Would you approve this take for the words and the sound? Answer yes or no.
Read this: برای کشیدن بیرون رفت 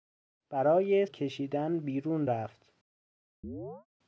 no